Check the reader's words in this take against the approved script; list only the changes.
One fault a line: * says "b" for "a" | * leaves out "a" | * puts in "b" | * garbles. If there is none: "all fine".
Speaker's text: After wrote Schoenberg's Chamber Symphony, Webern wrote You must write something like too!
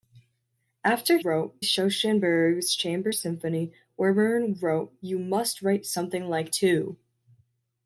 all fine